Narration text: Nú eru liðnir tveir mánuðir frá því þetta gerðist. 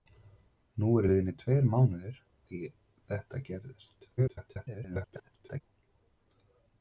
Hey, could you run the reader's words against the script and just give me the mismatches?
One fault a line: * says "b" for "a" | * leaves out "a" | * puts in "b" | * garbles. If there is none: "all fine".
* leaves out "frá"
* garbles